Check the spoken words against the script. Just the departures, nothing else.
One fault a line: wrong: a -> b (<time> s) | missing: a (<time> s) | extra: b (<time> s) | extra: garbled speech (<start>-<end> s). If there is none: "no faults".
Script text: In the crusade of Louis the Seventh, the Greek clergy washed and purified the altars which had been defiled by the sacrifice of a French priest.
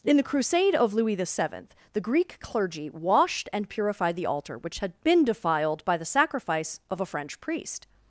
wrong: altars -> altar (4.2 s)